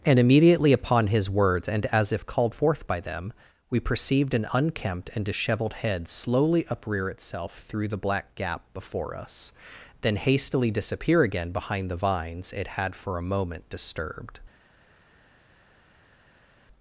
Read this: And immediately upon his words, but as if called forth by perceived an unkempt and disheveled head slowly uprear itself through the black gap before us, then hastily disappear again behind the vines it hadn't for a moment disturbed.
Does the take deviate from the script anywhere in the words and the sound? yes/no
yes